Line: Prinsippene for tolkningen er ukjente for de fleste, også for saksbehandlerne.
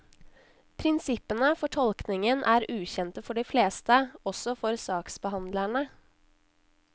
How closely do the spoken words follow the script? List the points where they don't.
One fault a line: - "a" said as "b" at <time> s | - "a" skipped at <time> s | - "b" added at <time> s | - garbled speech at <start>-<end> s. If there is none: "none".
none